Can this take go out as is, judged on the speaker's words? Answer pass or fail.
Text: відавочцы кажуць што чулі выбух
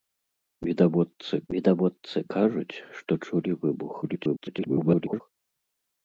fail